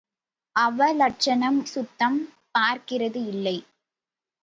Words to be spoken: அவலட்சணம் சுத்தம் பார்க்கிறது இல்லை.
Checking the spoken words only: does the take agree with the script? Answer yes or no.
yes